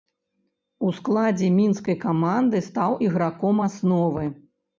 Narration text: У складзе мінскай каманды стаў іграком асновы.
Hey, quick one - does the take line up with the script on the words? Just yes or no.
yes